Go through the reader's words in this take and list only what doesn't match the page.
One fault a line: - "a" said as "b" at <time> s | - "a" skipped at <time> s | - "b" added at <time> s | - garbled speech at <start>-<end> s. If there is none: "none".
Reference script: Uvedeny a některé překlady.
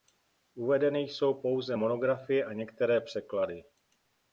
- "jsou pouze monografie" added at 1.0 s